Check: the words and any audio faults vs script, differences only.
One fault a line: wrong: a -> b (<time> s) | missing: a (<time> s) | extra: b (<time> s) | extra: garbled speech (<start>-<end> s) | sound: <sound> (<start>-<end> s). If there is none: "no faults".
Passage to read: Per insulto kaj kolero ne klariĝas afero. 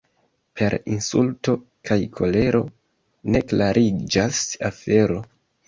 no faults